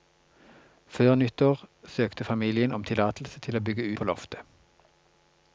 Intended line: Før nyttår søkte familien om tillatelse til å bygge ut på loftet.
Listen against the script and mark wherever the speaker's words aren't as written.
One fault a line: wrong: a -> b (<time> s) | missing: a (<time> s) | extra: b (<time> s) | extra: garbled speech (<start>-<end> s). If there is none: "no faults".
missing: ut (3.9 s)